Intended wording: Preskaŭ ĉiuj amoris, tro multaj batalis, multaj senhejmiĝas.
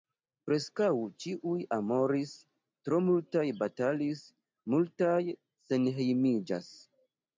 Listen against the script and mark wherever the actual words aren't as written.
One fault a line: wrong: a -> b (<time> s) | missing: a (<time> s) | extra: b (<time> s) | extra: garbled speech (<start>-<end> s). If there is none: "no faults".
no faults